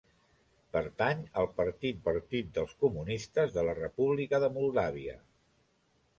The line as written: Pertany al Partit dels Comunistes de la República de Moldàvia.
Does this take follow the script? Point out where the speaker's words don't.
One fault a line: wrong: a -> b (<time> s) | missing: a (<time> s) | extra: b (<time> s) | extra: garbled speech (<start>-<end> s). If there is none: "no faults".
extra: Partit (2.1 s)